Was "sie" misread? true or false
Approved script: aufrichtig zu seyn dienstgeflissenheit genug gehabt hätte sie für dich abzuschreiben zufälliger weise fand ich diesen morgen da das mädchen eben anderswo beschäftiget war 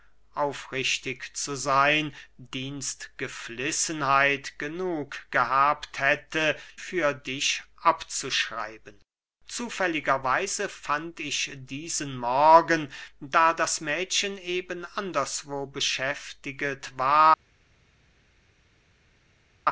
true